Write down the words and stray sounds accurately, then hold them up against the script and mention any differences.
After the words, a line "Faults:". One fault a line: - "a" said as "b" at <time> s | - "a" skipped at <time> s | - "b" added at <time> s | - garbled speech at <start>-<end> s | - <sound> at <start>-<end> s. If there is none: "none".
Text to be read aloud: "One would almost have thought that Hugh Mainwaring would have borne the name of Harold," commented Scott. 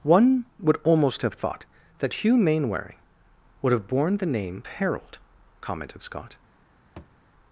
"One would almost have thought that Hugh Mainwaring would have borne the name Harold," commented Scott.
Faults:
- "of" skipped at 4.6 s
- thud at 7.0-7.2 s